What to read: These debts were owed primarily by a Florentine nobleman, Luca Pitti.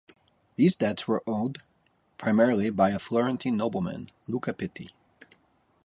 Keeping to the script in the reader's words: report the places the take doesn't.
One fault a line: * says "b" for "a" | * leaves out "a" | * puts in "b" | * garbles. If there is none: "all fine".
all fine